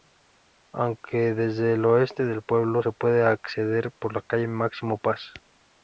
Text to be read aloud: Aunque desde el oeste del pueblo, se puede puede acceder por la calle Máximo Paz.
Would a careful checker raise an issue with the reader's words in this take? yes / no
yes